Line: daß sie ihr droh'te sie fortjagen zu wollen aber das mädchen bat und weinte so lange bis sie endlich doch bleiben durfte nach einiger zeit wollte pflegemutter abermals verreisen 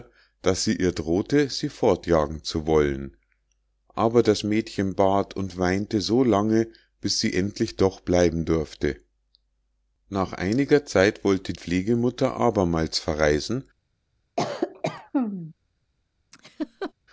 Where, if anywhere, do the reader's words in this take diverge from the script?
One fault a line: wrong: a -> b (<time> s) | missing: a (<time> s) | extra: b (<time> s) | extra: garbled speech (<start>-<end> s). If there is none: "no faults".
no faults